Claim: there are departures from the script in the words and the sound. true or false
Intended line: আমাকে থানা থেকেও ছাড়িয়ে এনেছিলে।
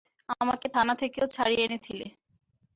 false